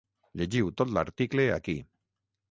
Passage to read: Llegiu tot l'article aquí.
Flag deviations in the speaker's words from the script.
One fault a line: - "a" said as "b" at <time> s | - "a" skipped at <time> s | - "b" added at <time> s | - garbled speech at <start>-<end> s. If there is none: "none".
none